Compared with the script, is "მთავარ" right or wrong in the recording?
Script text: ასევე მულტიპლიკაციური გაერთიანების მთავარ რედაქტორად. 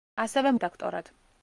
wrong